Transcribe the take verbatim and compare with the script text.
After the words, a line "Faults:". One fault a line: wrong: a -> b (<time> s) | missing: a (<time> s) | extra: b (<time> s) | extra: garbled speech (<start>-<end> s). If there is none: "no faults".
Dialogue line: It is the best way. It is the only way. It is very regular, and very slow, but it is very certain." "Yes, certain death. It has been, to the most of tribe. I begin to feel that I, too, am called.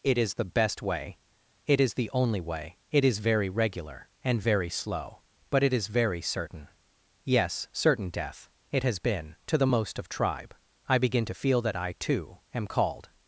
It is the best way. It is the only way. It is very regular, and very slow, but it is very certain." "Yes, certain death. It has been, to the most of tribe. I begin to feel that I, too, am called.
Faults:
no faults